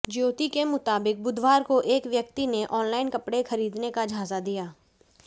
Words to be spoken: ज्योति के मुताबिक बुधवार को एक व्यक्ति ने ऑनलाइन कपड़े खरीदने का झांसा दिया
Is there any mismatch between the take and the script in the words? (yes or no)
no